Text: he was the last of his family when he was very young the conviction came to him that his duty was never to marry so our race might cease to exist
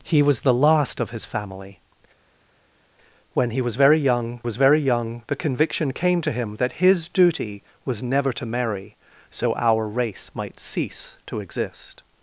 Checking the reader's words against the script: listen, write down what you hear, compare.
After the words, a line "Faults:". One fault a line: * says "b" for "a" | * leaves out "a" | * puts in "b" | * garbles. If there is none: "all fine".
he was the last of his family when he was very young was very young the conviction came to him that his duty was never to marry so our race might cease to exist
Faults:
* puts in "was very young"